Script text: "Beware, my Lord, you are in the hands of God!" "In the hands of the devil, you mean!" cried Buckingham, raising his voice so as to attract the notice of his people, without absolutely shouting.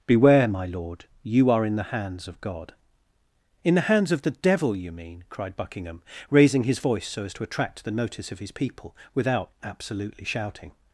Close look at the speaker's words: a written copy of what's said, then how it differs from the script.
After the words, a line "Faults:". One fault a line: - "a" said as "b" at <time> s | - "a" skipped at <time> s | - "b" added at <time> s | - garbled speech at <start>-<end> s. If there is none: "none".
"Beware, my Lord, you are in the hands of God!" "In the hands of the devil, you mean!" cried Buckingham, raising his voice so as to attract the notice of his people, without absolutely shouting.
Faults:
none